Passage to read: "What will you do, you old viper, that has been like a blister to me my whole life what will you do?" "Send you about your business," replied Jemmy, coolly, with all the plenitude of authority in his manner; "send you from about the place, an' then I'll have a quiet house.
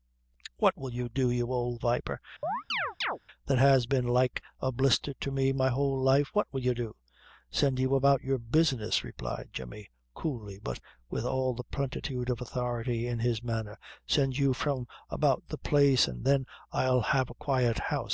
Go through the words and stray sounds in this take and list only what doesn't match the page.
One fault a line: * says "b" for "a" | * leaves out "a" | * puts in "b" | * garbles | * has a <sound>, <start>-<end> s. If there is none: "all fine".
* has a chirp, 2.4-3.2 s
* puts in "but"